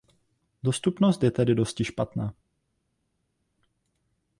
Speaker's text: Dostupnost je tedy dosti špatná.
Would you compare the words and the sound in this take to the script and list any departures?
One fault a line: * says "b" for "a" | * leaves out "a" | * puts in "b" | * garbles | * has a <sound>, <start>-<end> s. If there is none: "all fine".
all fine